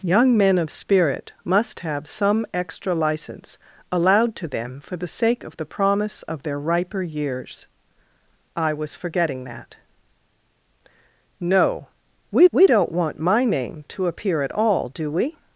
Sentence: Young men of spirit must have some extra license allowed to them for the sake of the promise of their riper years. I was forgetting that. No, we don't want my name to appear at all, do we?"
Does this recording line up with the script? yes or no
no